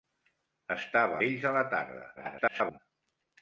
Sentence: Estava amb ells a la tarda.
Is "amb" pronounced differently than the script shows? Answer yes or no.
yes